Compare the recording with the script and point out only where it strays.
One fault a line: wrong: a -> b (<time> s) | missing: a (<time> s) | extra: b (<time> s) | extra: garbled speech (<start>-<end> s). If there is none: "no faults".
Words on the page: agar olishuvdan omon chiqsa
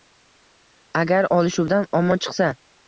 no faults